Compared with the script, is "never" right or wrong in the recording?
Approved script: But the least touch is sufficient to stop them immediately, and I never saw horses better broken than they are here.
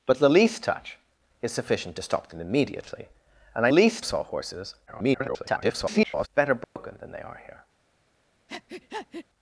wrong